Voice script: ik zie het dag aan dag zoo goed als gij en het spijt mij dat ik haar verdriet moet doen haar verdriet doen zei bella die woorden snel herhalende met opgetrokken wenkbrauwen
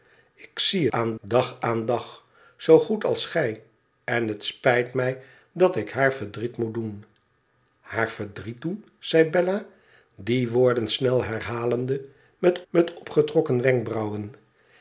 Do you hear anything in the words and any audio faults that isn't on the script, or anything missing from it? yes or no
yes